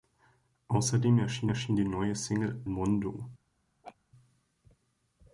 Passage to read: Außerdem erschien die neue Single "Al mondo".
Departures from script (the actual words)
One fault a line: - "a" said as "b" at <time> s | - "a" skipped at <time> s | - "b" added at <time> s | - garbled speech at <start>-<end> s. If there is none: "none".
- "erschien" added at 1.5 s
- "Al" skipped at 2.6 s